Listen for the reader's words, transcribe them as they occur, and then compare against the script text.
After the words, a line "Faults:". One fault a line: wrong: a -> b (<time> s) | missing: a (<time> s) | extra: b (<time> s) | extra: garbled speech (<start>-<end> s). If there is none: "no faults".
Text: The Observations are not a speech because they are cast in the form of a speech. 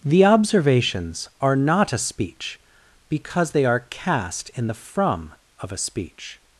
The Observations are not a speech because they are cast in the from of a speech.
Faults:
wrong: form -> from (4.7 s)